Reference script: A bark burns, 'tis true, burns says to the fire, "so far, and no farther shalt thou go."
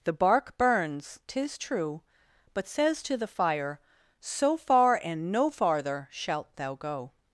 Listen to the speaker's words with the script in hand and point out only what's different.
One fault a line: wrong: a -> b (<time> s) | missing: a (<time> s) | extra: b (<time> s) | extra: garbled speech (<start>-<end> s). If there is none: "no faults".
wrong: A -> The (0.0 s)
wrong: burns -> but (2.5 s)